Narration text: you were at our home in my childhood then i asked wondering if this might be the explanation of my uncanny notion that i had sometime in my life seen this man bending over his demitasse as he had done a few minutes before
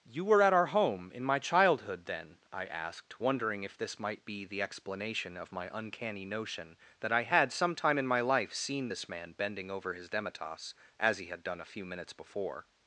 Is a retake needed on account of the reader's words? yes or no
no